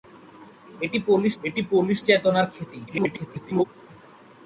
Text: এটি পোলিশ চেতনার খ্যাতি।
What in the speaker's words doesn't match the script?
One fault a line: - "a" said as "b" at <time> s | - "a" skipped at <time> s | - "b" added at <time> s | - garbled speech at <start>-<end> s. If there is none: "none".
- "এটি পোলিশ" added at 1.4 s
- garbled speech at 2.9-3.6 s